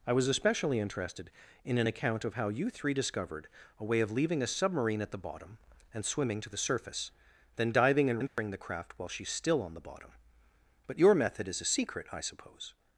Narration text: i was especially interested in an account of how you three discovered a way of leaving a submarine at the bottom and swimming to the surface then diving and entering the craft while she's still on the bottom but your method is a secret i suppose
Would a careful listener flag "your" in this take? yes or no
no